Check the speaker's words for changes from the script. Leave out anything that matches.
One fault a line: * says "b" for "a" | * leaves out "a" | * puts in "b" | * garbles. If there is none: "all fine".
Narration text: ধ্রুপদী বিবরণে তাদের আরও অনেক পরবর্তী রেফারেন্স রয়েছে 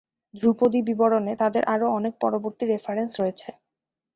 all fine